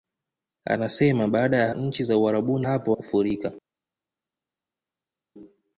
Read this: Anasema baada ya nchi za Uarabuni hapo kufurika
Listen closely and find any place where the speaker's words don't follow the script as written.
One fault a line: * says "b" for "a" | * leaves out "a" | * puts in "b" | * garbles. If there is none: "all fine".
all fine